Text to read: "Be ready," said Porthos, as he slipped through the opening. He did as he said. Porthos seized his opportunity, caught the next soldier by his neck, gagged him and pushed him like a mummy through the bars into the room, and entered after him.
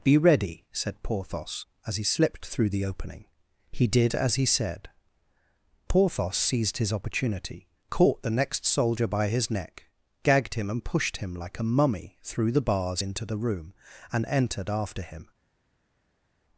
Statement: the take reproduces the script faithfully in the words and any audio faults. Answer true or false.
true